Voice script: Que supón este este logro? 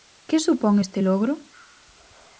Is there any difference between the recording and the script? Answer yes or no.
yes